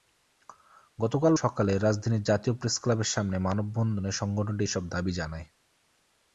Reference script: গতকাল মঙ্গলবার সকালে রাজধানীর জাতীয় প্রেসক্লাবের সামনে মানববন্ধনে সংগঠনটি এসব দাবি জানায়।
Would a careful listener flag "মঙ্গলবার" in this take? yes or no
yes